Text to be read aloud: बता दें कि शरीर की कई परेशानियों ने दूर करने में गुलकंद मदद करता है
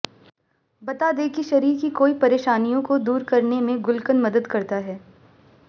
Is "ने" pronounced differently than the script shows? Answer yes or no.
yes